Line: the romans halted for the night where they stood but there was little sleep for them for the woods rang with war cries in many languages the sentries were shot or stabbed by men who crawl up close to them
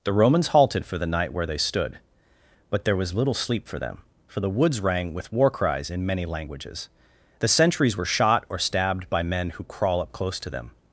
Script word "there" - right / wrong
right